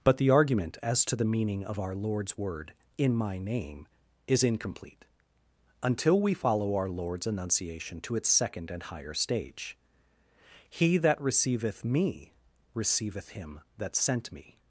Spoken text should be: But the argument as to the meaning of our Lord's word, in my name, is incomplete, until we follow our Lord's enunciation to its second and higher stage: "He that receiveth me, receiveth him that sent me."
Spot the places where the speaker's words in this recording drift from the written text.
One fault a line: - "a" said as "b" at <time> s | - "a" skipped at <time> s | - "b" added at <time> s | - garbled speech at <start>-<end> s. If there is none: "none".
none